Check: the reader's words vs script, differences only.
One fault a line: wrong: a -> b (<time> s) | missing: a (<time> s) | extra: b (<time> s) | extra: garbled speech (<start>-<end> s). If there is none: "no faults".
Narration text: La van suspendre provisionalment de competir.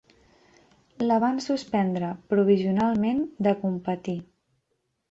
no faults